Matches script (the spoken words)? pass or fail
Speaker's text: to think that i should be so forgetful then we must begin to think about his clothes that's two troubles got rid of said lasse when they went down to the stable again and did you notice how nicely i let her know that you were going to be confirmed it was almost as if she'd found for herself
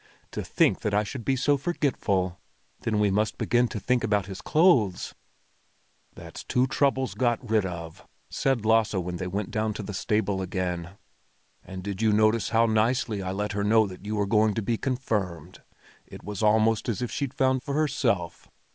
pass